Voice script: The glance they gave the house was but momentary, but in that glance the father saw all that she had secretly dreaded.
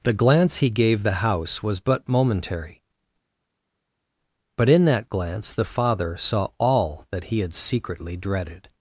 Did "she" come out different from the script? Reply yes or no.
yes